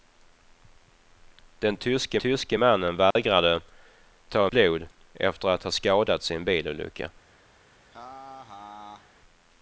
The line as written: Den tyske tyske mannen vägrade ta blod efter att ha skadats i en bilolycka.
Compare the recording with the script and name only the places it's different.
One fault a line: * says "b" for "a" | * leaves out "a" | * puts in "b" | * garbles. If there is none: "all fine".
all fine